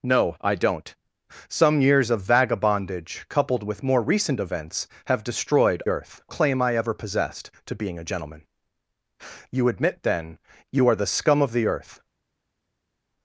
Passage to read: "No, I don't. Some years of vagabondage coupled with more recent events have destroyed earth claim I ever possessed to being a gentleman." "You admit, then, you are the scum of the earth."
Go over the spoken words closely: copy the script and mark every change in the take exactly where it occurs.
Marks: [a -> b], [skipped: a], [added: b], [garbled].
"No, I don't. Some years of vagabondage coupled with more recent events have destroyed earth claim I ever possessed to being a gentleman." "You admit, then, you are the scum of the earth."